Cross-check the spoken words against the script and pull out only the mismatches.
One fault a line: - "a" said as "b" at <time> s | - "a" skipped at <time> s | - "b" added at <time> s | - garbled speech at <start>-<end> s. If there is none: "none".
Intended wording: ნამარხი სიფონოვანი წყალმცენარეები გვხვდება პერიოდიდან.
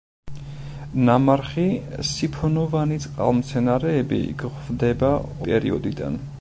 none